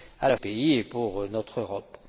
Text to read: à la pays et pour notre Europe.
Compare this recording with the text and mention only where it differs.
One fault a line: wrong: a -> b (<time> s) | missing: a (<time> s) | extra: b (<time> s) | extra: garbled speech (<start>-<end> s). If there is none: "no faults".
no faults